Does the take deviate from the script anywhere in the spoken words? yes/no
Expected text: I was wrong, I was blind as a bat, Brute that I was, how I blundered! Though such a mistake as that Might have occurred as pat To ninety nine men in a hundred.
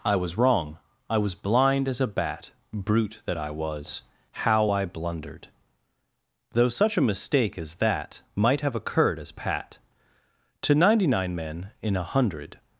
no